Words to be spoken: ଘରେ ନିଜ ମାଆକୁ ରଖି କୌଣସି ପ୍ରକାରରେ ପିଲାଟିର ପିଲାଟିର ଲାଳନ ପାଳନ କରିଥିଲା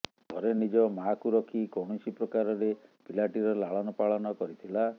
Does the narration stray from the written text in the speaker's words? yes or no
yes